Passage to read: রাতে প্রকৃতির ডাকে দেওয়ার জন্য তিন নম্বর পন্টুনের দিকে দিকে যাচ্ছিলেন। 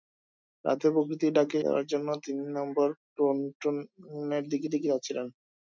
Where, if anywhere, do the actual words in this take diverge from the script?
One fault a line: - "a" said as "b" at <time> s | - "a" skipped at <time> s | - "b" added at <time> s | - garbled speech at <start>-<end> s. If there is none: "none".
none